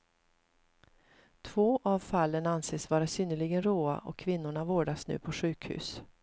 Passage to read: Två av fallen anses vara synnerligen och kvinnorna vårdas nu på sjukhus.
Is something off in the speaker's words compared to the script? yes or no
yes